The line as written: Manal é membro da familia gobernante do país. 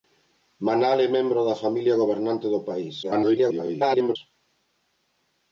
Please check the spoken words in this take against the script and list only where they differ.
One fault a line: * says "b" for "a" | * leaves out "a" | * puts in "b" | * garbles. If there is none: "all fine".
* garbles